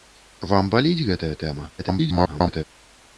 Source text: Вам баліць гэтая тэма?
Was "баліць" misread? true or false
false